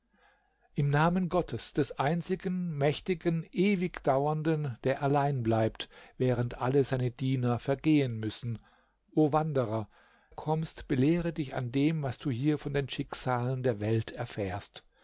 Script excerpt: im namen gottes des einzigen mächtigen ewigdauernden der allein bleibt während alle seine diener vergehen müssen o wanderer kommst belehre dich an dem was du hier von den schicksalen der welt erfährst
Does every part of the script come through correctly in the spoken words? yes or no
yes